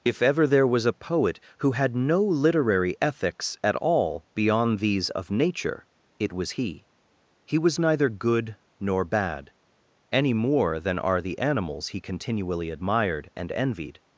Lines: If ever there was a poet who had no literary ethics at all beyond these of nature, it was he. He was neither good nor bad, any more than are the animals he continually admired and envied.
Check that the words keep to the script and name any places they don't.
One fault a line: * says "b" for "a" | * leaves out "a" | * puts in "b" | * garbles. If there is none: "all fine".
all fine